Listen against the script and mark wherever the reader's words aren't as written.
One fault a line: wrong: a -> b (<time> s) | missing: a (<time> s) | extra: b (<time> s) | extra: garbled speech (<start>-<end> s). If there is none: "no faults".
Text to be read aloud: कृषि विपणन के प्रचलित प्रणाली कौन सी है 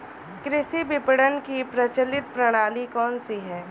wrong: के -> की (1.4 s)